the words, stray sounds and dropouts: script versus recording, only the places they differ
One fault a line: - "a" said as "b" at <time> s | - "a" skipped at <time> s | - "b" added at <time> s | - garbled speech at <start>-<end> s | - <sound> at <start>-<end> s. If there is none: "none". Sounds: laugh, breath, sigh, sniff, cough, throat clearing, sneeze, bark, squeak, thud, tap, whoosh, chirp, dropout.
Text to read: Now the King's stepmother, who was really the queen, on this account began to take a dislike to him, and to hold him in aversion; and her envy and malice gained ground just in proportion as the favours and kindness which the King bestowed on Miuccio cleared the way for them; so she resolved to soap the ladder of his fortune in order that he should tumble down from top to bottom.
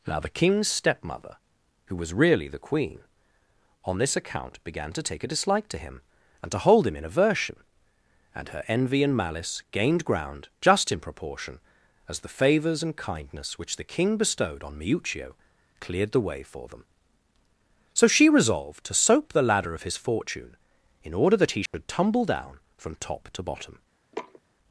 - dropout at 21.7-21.7 s
- sniff at 24.1-24.4 s